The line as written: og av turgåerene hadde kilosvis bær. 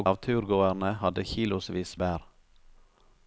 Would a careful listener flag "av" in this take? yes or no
no